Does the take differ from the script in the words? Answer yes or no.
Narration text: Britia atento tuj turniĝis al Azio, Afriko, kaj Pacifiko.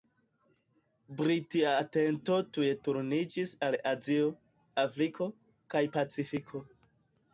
no